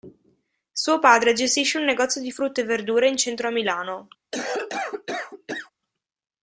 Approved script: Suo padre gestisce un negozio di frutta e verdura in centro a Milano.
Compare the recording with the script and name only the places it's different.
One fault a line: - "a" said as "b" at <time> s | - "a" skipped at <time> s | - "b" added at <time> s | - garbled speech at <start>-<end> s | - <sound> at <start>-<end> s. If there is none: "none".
- cough at 4.3-5.7 s